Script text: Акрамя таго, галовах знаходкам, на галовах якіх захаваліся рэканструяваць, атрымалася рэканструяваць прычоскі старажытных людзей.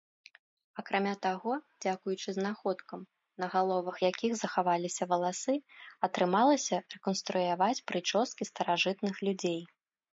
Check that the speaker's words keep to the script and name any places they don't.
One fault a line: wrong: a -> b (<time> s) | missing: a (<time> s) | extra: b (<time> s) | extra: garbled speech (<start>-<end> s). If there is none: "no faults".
wrong: галовах -> дзякуючы (1.9 s)
wrong: рэканструяваць -> валасы (5.1 s)